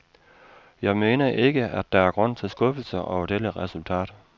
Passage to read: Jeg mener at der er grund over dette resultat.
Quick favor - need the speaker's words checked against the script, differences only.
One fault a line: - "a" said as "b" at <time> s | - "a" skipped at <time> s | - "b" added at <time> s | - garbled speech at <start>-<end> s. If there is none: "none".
- "ikke" added at 1.3 s
- "til skuffelse" added at 2.4 s